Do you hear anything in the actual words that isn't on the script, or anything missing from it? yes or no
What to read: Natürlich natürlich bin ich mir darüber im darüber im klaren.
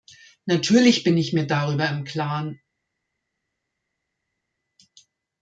yes